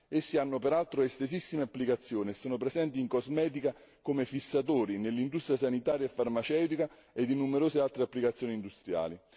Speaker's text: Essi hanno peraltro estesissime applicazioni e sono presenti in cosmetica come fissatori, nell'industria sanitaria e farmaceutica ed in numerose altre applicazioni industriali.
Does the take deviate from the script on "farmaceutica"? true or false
false